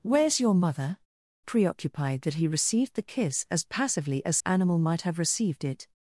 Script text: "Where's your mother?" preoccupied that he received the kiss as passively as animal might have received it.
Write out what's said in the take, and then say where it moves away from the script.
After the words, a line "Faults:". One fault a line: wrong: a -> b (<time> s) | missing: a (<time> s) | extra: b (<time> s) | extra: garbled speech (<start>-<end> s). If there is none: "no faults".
"Where's your mother?" preoccupied that he received the kiss as passively as animal might have received it.
Faults:
no faults